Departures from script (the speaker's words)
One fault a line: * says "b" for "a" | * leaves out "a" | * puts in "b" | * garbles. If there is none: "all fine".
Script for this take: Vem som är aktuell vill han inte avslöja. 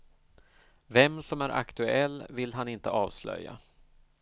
all fine